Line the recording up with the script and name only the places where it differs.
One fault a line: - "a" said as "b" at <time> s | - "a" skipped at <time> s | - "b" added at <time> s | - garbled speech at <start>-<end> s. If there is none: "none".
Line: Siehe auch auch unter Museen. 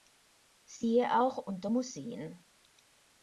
- "auch" skipped at 1.4 s